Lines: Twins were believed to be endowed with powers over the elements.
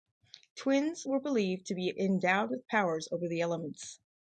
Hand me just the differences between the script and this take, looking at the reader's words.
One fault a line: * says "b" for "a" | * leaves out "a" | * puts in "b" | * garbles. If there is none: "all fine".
all fine